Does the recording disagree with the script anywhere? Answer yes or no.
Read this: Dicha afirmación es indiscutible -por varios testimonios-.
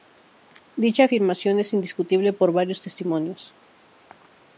no